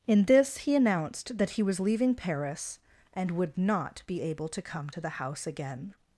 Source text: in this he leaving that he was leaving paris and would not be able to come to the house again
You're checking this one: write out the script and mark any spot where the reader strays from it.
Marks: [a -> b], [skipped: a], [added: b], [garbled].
in this he [leaving -> announced] that he was leaving paris and would not be able to come to the house again